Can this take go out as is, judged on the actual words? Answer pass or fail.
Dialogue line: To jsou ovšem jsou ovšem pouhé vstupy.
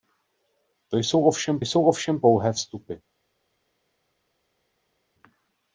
pass